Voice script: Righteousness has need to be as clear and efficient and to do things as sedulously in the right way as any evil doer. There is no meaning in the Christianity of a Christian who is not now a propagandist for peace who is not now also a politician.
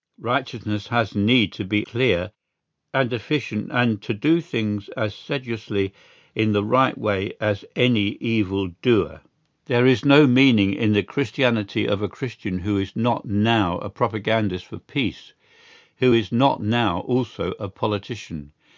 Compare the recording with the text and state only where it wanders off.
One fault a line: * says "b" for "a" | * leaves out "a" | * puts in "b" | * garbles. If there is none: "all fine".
* leaves out "as"